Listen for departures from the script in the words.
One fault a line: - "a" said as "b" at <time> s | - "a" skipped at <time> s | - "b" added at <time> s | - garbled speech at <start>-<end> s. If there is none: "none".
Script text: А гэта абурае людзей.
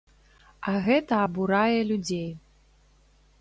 none